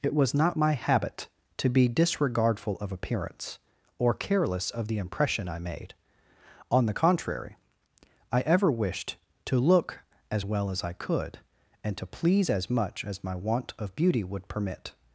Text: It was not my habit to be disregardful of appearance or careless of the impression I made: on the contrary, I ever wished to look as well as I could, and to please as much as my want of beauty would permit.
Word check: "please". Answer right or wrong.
right